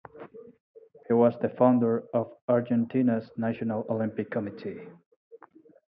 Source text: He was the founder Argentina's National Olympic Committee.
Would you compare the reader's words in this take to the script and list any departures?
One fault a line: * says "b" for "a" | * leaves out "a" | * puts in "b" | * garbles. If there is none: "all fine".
* puts in "of"